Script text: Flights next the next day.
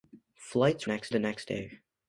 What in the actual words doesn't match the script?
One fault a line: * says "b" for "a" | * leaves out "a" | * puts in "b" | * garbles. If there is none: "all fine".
all fine